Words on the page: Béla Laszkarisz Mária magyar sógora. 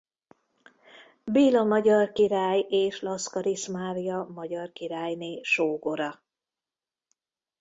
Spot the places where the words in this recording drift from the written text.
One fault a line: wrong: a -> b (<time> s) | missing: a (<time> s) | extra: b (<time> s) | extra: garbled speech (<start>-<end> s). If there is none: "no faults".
extra: magyar király és (1.6 s)
extra: királyné (4.7 s)